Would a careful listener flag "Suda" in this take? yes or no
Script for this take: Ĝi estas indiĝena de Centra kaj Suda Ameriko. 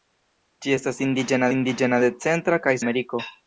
yes